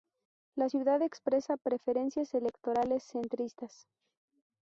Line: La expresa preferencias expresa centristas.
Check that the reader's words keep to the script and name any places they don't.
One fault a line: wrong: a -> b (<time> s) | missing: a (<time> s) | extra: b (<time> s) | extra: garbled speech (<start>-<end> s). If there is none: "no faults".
extra: ciudad (0.7 s)
wrong: expresa -> electorales (2.3 s)